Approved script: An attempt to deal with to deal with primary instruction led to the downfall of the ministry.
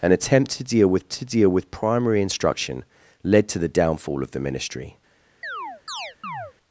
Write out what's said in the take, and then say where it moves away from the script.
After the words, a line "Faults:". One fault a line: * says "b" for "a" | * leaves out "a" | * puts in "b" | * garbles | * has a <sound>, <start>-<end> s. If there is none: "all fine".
An attempt to deal with to deal with primary instruction led to the downfall of the ministry.
Faults:
* has a chirp, 5.4-6.5 s